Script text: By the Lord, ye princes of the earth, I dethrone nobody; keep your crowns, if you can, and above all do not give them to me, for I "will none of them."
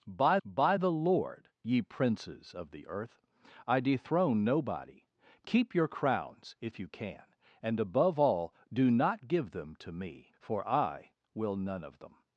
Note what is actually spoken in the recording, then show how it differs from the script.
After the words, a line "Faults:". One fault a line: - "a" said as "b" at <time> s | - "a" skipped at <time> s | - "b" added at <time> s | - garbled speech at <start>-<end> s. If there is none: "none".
By by the Lord, ye princes of the earth, I dethrone nobody; keep your crowns, if you can, and above all do not give them to me, for I "will none of them."
Faults:
- "by" added at 0.5 s